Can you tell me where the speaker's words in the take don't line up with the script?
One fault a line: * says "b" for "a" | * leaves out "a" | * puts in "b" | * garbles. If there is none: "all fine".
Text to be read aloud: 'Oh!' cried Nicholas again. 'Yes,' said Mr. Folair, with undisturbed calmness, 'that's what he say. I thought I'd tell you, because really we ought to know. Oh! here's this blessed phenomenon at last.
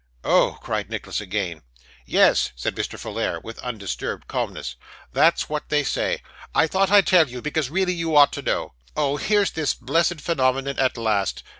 * says "they" for "he"
* says "you" for "we"